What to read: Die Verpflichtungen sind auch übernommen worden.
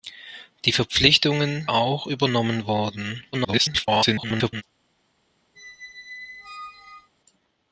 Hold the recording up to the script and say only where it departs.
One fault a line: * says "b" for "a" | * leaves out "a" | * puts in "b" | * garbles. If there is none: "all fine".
* leaves out "sind"
* garbles